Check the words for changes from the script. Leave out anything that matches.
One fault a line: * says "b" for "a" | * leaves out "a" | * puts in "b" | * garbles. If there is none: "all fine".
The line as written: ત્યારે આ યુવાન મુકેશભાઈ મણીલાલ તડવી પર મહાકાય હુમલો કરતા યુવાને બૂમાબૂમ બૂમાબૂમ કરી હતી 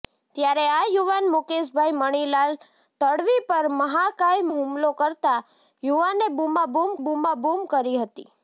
all fine